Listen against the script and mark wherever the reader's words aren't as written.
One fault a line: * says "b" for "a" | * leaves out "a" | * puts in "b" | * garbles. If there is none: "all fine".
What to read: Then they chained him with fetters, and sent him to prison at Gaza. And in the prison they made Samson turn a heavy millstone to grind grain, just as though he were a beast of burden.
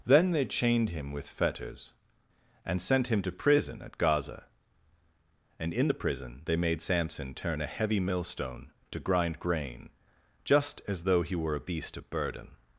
all fine